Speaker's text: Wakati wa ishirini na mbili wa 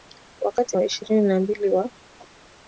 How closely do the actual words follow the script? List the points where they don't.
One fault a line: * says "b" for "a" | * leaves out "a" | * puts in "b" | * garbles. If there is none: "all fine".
all fine